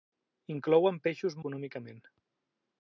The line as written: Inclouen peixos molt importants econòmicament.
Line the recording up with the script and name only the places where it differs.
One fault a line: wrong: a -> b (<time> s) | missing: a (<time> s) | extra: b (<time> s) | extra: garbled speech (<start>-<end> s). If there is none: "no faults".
missing: molt importants (1.4 s)